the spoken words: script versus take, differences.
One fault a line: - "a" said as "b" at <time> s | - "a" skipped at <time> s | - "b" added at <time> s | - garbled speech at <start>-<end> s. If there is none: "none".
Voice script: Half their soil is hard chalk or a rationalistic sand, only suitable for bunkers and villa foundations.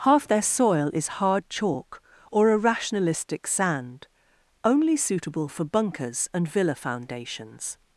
none